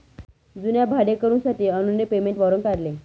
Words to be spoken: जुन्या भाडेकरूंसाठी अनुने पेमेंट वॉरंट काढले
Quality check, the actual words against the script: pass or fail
pass